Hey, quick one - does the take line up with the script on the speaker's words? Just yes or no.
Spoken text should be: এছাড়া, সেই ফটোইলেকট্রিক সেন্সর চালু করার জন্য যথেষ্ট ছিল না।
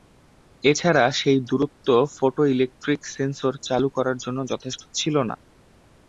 no